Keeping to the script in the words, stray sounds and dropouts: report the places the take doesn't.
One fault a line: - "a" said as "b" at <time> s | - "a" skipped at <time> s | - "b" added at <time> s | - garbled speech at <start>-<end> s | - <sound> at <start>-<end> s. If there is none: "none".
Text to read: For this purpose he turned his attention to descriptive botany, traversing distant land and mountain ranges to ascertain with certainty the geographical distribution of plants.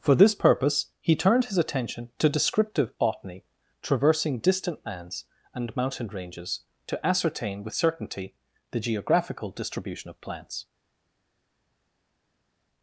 - "land" said as "lands" at 4.8 s